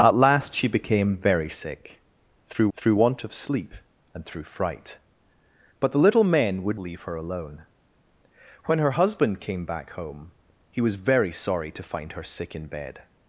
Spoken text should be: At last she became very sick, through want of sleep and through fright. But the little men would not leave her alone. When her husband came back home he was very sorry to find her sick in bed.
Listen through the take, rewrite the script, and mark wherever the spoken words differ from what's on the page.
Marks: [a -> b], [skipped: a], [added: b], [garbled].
At last she became very sick, through [added: through] want of sleep and through fright. But the little men would [skipped: not] leave her alone. When her husband came back home he was very sorry to find her sick in bed.